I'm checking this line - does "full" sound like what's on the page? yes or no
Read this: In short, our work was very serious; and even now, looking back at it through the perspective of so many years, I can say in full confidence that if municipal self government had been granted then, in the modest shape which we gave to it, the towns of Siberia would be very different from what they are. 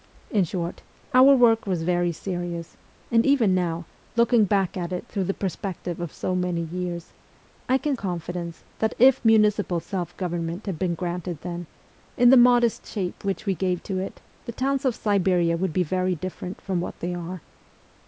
no